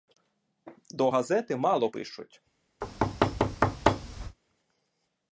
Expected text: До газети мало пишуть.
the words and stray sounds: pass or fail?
fail